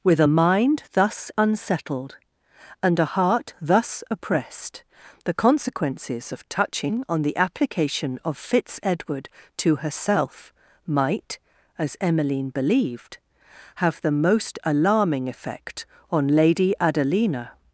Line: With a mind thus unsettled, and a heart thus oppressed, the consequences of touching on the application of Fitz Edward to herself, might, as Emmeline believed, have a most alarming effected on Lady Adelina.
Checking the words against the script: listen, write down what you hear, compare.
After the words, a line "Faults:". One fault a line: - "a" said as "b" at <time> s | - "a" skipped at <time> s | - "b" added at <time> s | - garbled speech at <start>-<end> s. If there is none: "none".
With a mind thus unsettled, and a heart thus oppressed, the consequences of touching on the application of Fitz Edward to herself, might, as Emmeline believed, have the most alarming effect on Lady Adelina.
Faults:
- "a" said as "the" at 14.0 s
- "effected" said as "effect" at 15.3 s